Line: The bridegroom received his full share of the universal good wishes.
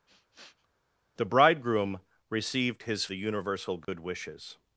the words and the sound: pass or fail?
fail